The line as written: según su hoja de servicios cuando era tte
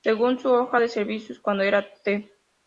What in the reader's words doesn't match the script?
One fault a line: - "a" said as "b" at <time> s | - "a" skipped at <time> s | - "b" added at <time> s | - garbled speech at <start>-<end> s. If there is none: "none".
none